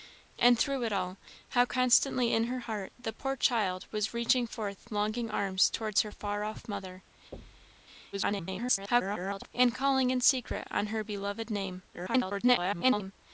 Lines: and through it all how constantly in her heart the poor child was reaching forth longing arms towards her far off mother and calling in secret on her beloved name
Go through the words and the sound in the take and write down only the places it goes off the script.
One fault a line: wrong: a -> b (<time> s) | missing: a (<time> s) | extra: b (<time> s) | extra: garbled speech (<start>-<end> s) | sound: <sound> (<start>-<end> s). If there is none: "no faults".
sound: thud (7.3-7.9 s)
extra: garbled speech (8.1-9.5 s)
extra: garbled speech (11.9-13.1 s)